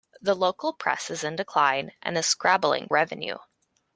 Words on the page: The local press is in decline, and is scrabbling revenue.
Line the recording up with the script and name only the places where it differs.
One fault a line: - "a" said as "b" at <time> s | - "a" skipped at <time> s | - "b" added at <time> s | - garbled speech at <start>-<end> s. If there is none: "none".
none